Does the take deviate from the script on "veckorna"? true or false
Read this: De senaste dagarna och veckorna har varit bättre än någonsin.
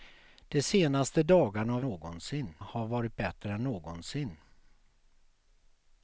true